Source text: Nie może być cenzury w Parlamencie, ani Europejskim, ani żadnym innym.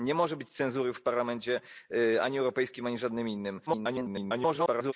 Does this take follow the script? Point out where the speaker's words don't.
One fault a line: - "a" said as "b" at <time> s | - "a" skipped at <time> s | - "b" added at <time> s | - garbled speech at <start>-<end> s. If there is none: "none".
- garbled speech at 3.7-4.9 s